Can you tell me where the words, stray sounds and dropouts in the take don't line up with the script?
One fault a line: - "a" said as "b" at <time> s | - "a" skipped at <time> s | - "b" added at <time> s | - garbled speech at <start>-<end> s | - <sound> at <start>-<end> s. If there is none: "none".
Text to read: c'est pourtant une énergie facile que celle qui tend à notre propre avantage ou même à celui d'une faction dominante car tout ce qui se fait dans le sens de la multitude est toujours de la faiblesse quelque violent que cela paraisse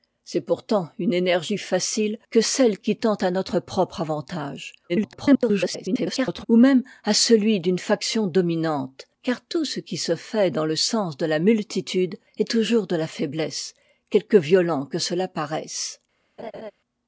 - garbled speech at 4.9-6.4 s
- laugh at 16.4-16.7 s